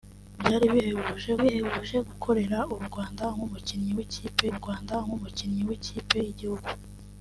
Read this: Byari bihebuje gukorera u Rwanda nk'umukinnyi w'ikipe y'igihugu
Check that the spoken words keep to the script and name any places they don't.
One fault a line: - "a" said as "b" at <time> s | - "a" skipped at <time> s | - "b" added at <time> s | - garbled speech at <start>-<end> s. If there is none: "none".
- "bihebuje" added at 1.4 s
- "Rwanda nk'umukinnyi w'ikipe" added at 4.6 s